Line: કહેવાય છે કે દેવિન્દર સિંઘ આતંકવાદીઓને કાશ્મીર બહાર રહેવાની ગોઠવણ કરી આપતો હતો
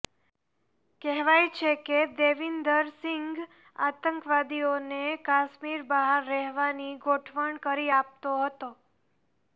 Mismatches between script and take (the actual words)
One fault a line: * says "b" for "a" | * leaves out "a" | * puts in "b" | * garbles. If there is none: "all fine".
all fine